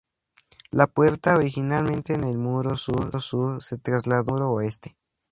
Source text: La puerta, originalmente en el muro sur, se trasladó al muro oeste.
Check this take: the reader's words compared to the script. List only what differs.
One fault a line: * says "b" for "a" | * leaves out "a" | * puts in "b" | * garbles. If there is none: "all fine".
all fine